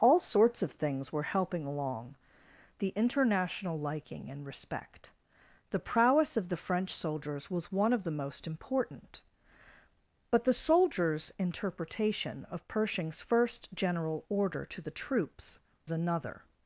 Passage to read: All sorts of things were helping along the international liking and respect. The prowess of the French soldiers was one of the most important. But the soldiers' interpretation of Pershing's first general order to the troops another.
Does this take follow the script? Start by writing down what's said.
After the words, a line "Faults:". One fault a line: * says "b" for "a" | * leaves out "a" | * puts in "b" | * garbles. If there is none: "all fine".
All sorts of things were helping along the international liking and respect. The prowess of the French soldiers was one of the most important. But the soldiers' interpretation of Pershing's first general order to the troops another.
Faults:
all fine